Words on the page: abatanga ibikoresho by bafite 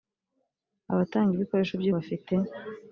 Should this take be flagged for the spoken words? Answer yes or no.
no